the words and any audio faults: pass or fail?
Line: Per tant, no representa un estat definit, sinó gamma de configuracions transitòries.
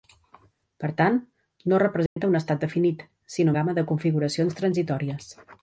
fail